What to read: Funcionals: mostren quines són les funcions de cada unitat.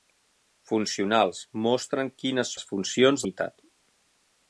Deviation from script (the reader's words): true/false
true